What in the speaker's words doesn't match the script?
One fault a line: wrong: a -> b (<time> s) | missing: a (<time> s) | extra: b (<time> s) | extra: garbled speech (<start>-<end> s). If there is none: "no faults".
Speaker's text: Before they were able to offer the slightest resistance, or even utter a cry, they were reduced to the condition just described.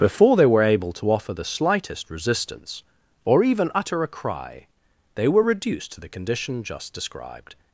no faults